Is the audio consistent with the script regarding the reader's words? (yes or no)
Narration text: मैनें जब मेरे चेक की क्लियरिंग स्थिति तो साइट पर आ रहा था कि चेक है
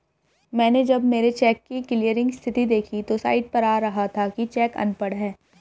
no